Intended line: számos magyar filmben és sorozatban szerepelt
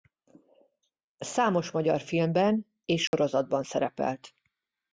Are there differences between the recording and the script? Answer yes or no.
no